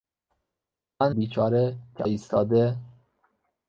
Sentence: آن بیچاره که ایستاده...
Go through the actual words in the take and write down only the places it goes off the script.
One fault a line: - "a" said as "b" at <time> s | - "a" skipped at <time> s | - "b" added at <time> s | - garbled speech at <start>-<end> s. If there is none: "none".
none